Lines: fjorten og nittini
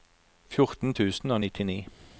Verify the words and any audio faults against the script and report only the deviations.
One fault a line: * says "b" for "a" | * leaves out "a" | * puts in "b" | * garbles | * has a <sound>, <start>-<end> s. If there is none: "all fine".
* puts in "tusen"